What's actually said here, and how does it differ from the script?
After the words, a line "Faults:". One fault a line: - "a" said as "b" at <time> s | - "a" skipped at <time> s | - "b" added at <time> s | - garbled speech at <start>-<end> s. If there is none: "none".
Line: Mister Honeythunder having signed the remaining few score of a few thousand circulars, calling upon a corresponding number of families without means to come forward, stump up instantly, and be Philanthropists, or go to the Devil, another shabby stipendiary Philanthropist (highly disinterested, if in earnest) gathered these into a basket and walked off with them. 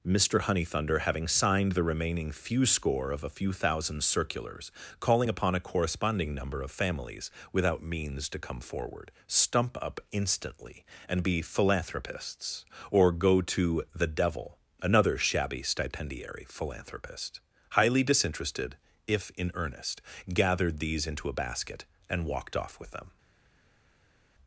Mister Honeythunder having signed the remaining few score of a few thousand circulars, calling upon a corresponding number of families without means to come forward, stump up instantly, and be Philanthropists, or go to the Devil, another shabby stipendiary Philanthropist (highly disinterested, if in earnest) gathered these into a basket and walked off with them.
Faults:
none